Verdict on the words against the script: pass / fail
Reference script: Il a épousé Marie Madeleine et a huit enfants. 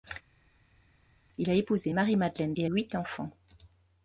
pass